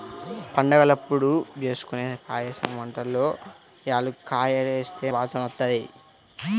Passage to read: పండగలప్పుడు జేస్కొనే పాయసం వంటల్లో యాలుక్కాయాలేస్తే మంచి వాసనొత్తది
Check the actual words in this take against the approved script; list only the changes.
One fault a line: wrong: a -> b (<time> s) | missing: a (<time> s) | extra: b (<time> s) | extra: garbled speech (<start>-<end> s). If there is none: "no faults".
missing: మంచి (5.1 s)